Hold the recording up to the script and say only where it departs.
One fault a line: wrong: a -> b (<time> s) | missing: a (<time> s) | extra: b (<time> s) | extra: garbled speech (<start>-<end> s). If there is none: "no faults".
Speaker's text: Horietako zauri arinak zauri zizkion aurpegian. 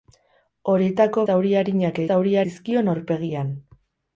no faults